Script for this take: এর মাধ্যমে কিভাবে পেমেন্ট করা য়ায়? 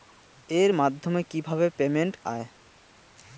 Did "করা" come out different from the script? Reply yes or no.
yes